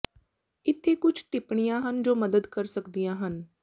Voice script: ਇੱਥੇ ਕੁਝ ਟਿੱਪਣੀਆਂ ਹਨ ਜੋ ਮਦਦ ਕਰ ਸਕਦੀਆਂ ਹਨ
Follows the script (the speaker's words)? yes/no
yes